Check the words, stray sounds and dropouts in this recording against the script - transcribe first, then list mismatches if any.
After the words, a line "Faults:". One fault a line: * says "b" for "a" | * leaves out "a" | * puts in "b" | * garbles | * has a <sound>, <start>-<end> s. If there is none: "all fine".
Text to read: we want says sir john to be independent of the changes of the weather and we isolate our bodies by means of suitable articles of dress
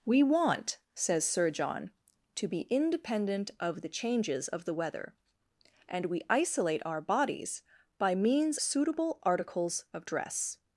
we want says sir john to be independent of the changes of the weather and we isolate our bodies by means suitable articles of dress
Faults:
* leaves out "of"